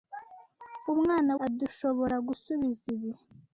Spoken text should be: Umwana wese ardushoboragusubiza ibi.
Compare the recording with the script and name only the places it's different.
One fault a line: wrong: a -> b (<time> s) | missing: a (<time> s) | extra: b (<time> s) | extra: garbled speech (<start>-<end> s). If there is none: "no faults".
missing: wese (1.3 s)